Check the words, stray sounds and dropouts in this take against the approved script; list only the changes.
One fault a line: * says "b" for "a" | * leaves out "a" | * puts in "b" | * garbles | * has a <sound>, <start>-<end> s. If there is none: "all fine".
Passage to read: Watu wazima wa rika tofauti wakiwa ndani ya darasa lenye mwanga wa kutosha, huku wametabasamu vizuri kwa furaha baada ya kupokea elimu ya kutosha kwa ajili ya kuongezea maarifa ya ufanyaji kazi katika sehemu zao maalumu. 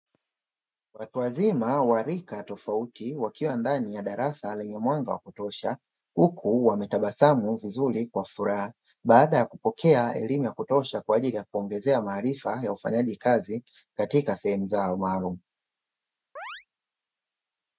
* has a chirp, 16.4-16.7 s